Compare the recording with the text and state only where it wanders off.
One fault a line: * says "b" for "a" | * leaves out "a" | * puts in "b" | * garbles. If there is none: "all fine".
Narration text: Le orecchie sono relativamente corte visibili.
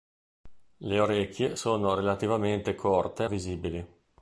all fine